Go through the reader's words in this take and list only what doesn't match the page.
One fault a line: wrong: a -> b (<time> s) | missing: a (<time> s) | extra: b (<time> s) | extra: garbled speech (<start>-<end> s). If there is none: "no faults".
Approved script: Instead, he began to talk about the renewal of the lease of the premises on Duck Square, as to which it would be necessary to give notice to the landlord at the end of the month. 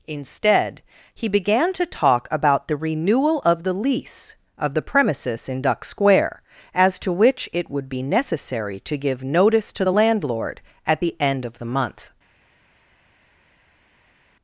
wrong: on -> in (5.5 s)